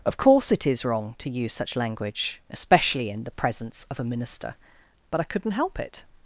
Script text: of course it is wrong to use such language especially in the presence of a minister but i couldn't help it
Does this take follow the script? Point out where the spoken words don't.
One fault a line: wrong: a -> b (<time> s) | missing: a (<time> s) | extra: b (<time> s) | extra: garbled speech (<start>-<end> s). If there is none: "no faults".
no faults